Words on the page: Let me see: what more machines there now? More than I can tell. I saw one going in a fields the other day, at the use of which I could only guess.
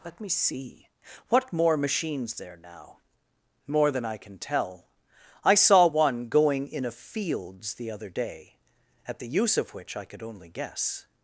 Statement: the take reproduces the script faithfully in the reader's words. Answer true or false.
true